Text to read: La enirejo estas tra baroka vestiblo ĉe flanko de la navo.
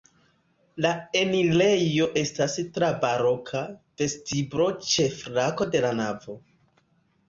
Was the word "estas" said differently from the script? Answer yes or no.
no